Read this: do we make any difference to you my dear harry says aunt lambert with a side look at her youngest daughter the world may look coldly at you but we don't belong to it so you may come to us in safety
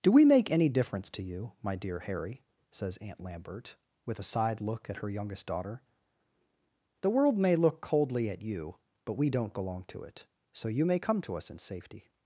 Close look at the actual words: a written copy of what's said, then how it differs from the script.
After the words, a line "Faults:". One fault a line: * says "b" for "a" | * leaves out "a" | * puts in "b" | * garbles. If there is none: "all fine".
do we make any difference to you my dear harry says aunt lambert with a side look at her youngest daughter the world may look coldly at you but we don't belong to it so you may come to us in safety
Faults:
all fine